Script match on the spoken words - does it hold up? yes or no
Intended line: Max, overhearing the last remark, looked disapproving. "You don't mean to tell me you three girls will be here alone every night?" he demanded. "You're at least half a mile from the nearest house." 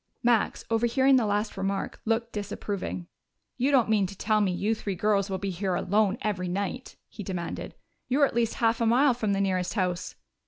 yes